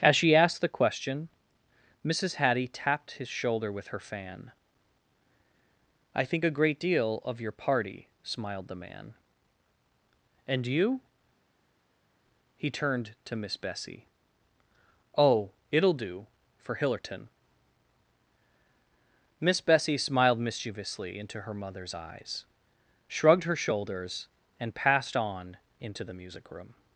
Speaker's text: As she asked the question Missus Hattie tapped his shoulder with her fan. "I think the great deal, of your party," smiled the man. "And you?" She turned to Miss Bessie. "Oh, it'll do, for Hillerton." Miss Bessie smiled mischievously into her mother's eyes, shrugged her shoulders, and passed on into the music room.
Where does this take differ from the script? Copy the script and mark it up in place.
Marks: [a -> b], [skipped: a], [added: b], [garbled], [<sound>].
As she asked the question Missus Hattie tapped his shoulder with her fan. "I think [the -> a] great deal, of your party," smiled the man. "And you?" [She -> He] turned to Miss Bessie. "Oh, it'll do, for Hillerton." Miss Bessie smiled mischievously into her mother's eyes, shrugged her shoulders, and passed on into the music room.